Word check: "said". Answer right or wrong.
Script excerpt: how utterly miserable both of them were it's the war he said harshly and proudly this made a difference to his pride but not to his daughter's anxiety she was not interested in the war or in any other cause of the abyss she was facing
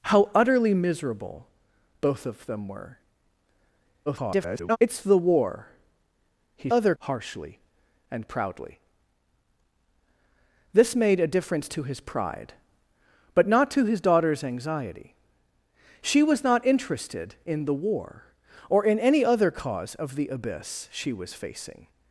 wrong